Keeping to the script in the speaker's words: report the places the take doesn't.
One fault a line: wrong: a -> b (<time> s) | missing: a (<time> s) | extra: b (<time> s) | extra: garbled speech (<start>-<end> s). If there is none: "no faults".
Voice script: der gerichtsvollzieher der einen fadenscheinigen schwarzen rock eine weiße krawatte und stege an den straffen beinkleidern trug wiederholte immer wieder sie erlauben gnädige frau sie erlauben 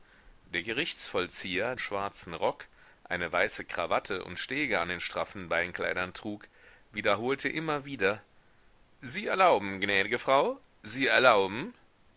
missing: der einen fadenscheinigen (1.8 s)